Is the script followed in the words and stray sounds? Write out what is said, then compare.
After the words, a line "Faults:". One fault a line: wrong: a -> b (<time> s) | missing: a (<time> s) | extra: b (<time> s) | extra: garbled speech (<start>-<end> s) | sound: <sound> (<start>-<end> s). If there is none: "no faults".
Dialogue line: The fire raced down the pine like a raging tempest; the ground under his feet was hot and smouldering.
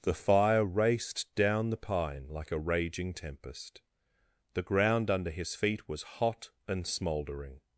The fire raced down the pine like a raging tempest; the ground under his feet was hot and smouldering.
Faults:
no faults